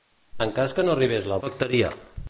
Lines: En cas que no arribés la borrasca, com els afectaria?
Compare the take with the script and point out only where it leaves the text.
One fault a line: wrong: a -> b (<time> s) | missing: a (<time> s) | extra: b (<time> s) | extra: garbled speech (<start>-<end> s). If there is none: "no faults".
missing: borrasca com els (1.4 s)